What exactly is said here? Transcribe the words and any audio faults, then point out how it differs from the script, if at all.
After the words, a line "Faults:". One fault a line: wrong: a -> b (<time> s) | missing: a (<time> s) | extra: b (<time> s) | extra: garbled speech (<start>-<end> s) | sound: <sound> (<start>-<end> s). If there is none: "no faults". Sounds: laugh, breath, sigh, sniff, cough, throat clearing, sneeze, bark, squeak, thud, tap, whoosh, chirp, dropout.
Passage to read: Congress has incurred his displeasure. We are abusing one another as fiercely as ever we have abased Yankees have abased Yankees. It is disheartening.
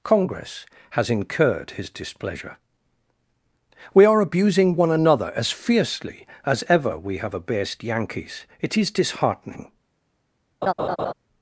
Congress has incurred his displeasure. We are abusing one another as fiercely as ever we have abased Yankees. It is disheartening.
Faults:
missing: have abased Yankees (8.4 s)
sound: laugh (10.6-11.1 s)